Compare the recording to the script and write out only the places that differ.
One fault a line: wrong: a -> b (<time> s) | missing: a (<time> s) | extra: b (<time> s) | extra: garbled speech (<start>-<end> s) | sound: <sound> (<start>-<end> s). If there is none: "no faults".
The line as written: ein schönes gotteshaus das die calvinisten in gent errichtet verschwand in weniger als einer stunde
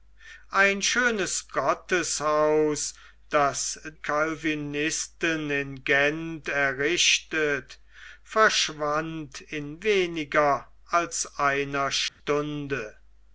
missing: die (3.8 s)
sound: dropout (12.1-12.2 s)